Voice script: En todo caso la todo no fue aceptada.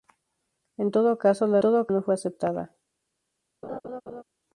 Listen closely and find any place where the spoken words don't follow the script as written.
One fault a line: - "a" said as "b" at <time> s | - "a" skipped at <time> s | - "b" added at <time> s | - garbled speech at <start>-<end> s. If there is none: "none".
none